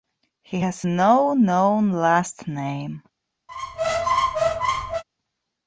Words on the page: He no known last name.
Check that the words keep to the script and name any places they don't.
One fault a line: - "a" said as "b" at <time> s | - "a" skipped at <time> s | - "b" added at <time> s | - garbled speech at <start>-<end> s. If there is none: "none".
- "has" added at 0.6 s